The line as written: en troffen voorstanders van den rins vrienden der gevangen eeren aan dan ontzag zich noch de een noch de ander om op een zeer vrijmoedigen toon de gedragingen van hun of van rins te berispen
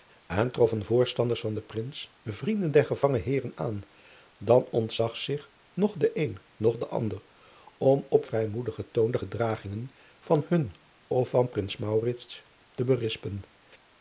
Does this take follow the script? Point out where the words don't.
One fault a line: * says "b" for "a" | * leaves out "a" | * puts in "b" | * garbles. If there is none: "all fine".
* leaves out "een zeer"